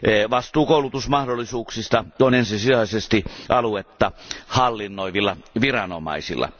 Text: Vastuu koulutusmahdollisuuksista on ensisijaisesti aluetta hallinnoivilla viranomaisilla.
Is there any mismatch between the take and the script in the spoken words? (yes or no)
no